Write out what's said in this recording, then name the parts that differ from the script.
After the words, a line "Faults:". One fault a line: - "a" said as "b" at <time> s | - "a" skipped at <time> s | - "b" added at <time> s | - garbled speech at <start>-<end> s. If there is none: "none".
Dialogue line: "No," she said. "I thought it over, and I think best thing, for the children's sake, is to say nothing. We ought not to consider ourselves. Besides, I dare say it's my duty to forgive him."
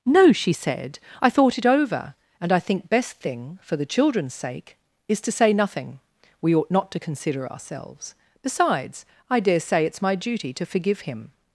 "No," she said. "I thought it over, and I think best thing, for the children's sake, is to say nothing. We ought not to consider ourselves. Besides, I dare say it's my duty to forgive him."
Faults:
none